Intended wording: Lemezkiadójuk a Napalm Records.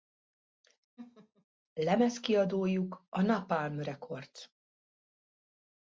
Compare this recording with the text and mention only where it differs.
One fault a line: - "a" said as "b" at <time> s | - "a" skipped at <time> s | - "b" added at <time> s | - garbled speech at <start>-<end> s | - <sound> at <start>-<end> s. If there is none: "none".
- laugh at 1.0-1.4 s